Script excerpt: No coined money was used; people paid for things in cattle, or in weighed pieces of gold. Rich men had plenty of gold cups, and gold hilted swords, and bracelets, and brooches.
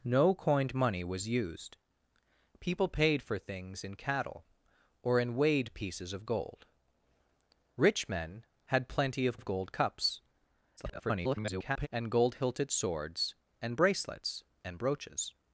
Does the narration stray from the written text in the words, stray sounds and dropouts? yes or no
yes